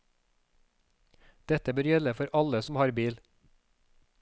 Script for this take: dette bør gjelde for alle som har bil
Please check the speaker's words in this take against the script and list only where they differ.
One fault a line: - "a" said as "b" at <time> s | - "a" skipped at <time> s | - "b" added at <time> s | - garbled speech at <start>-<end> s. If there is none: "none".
none